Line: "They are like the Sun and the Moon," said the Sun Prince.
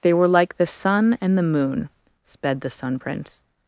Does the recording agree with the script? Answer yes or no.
no